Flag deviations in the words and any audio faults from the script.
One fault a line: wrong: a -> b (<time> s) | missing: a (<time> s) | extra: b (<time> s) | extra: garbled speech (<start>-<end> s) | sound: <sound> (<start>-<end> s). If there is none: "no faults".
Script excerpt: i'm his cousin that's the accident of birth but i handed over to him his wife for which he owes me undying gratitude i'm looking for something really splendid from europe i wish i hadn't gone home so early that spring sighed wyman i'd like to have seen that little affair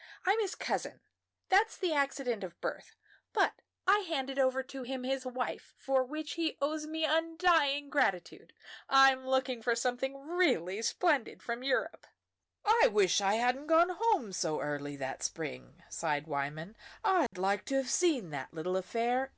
sound: dropout (17.3-17.3 s)